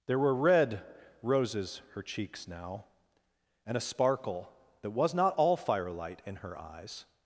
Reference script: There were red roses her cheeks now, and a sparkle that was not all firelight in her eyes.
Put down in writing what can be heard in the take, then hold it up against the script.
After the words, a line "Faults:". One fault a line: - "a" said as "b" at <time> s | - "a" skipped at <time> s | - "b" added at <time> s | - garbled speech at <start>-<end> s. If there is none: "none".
There were red roses her cheeks now, and a sparkle that was not all firelight in her eyes.
Faults:
none